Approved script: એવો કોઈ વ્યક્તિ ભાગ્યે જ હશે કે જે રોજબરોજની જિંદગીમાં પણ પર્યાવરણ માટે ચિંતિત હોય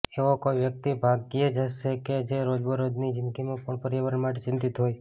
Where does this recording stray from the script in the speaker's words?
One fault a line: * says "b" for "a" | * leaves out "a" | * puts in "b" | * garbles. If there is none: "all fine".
all fine